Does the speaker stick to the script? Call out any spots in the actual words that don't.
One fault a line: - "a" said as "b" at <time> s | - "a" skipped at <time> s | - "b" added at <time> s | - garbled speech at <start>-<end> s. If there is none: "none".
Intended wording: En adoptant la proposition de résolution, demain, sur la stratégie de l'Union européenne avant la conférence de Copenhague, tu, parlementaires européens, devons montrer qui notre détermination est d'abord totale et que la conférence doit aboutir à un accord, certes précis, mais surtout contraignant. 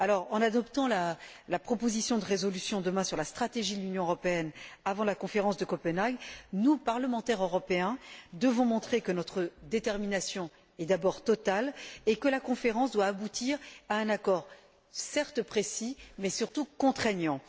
- "tu" said as "nous" at 6.5 s
- "qui" said as "que" at 9.0 s